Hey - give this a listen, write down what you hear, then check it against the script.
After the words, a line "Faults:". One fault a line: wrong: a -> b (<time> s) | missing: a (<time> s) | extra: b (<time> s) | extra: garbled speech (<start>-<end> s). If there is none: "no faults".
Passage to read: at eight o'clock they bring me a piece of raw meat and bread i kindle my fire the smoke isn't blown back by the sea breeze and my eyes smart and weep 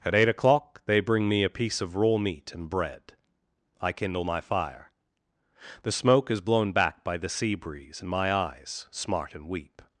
at eight o'clock they bring me a piece of raw meat and bread i kindle my fire the smoke is blown back by the sea breeze and my eyes smart and weep
Faults:
wrong: isn't -> is (6.3 s)